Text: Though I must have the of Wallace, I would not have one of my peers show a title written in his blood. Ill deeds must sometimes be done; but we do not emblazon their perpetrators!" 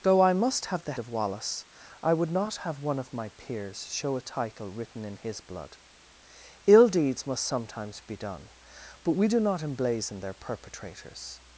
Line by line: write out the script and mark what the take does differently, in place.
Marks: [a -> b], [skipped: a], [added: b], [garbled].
Though I must have the of Wallace, I would not have one of my peers show a title written in his blood. Ill deeds must sometimes be done; but we do not emblazon their perpetrators!"